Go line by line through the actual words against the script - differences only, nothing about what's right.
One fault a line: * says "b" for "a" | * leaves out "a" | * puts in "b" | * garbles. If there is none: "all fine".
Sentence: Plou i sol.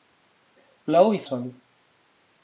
all fine